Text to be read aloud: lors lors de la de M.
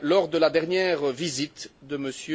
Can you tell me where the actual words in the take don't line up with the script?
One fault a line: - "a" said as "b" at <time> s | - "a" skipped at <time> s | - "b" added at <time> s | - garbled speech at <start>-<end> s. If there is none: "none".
- "lors" skipped at 0.3 s
- "dernière visite" added at 0.5 s